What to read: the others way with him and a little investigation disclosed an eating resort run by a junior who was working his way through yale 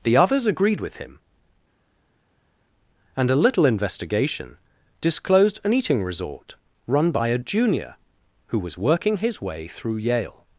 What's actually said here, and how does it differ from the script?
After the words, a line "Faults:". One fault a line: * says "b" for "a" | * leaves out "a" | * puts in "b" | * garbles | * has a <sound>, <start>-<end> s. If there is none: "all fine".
the others agreed with him and a little investigation disclosed an eating resort run by a junior who was working his way through yale
Faults:
* says "agreed" for "way"